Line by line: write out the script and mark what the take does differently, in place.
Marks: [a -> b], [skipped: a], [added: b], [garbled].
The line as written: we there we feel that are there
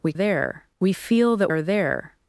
we there we feel that are there